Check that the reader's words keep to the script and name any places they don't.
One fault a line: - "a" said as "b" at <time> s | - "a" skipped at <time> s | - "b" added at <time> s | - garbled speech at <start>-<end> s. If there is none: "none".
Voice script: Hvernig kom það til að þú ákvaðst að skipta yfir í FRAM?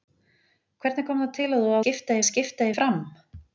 - "ákvaðst" said as "skipta" at 1.8 s
- "yfir" skipped at 2.7 s